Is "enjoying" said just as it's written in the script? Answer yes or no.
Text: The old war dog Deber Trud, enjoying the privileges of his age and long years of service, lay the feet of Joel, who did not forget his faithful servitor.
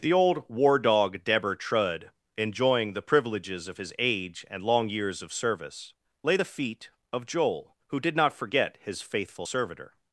yes